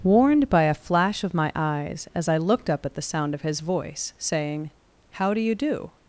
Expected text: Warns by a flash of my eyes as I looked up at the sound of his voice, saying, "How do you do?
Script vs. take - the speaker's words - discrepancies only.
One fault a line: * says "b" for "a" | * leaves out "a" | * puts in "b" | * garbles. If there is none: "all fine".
* says "Warned" for "Warns"